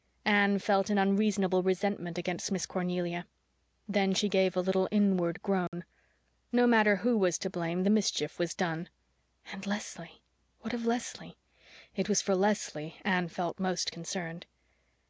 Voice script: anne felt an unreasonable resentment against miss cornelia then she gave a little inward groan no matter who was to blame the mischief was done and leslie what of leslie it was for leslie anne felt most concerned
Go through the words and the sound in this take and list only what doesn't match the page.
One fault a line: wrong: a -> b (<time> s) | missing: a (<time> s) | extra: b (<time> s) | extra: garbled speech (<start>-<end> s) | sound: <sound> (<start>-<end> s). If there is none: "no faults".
sound: dropout (5.7-5.7 s)